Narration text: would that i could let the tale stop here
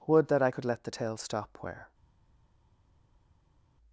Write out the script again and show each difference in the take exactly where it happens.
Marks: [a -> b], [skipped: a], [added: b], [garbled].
would that i could let the tale stop [here -> where]